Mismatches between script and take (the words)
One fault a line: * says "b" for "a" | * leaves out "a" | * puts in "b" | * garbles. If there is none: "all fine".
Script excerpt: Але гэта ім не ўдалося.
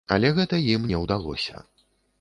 all fine